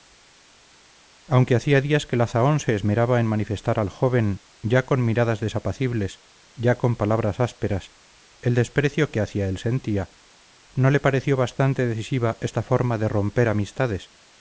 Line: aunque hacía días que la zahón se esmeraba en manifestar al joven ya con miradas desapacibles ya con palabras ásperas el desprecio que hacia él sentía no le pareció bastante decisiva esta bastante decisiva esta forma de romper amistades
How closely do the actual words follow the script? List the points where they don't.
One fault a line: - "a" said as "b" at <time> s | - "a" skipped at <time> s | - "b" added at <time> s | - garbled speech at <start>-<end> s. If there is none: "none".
- "bastante decisiva esta" skipped at 12.6 s